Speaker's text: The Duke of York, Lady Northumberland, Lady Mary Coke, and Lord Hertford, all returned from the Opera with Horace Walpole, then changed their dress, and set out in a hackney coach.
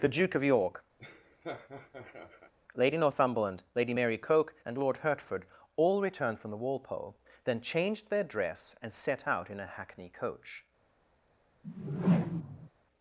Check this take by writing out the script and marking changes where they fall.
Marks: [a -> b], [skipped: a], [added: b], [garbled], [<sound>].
The Duke of York, [laugh] Lady Northumberland, Lady Mary Coke, and Lord Hertford, all returned from the [skipped: Opera with Horace] Walpole, then changed their dress, and set out in a hackney coach. [whoosh]